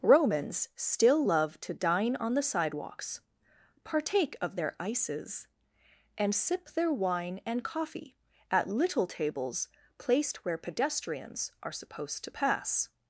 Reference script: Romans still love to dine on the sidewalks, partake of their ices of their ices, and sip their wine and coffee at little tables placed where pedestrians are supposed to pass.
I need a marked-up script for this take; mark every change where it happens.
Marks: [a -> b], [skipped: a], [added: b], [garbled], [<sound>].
Romans still love to dine on the sidewalks, partake of their ices [skipped: of their ices,] and sip their wine and coffee at little tables placed where pedestrians are supposed to pass.